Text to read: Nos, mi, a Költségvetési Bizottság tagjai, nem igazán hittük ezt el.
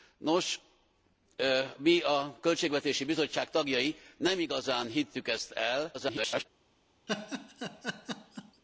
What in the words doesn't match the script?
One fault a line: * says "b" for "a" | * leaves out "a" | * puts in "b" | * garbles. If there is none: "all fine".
* garbles